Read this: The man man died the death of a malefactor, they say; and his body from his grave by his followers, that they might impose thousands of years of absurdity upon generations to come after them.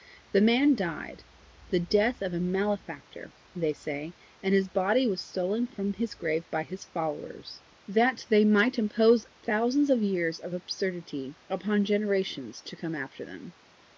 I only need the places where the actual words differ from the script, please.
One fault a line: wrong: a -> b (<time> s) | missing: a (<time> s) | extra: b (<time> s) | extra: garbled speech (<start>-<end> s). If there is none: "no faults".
missing: man (0.7 s)
extra: was stolen (5.0 s)